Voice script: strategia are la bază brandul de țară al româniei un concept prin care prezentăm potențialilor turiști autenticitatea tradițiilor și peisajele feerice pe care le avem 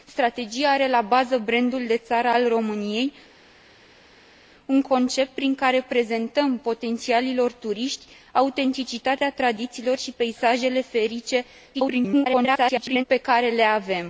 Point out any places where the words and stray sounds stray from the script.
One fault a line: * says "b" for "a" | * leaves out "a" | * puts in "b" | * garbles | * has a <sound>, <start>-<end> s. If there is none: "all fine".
* garbles